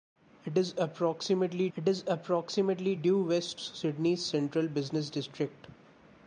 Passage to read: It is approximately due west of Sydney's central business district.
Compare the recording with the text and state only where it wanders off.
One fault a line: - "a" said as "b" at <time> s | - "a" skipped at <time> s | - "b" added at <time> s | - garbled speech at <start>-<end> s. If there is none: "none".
- "it is approximately" added at 1.8 s
- "of" skipped at 3.6 s